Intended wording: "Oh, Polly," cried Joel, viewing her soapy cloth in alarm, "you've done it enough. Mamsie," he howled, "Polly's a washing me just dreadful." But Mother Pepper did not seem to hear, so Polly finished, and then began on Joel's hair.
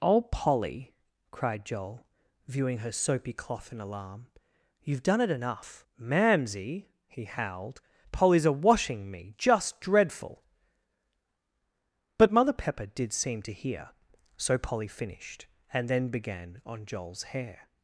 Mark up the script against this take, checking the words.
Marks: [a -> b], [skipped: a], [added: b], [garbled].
"Oh, Polly," cried Joel, viewing her soapy cloth in alarm, "you've done it enough. Mamsie," he howled, "Polly's a washing me just dreadful." But Mother Pepper did [skipped: not] seem to hear, so Polly finished, and then began on Joel's hair.